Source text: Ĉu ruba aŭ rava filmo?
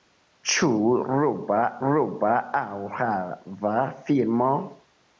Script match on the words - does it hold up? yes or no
no